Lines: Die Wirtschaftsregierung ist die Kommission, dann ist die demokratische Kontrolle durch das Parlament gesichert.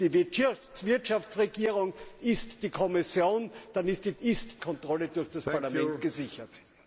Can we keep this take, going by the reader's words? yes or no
no